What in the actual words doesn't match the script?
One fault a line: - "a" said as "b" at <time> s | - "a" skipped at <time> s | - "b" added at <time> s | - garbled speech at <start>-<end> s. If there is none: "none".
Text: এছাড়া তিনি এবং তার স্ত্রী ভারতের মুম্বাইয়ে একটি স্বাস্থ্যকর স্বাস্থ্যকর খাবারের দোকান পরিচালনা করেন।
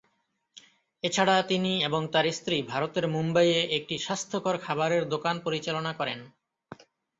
- "স্বাস্থ্যকর" skipped at 4.6 s